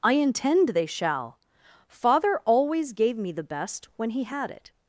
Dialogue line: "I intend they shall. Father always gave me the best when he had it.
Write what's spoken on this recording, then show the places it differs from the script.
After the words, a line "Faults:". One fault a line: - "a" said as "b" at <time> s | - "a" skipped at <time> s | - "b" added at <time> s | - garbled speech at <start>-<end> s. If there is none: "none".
"I intend they shall. Father always gave me the best when he had it.
Faults:
none